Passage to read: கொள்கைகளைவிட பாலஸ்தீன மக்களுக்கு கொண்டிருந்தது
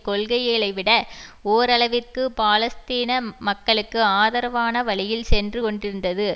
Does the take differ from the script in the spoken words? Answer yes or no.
yes